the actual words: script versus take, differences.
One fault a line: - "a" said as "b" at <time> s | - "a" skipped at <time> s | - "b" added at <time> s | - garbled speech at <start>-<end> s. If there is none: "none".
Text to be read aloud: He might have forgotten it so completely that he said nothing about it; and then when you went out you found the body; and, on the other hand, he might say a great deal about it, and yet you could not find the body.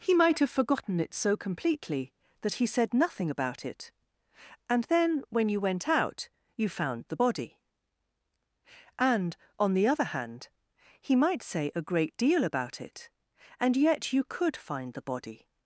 - "not" skipped at 14.5 s